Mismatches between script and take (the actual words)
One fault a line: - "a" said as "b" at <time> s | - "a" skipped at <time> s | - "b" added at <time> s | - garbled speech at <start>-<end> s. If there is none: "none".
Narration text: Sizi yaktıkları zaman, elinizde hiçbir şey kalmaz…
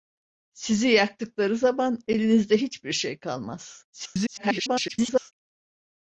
- garbled speech at 3.9-5.3 s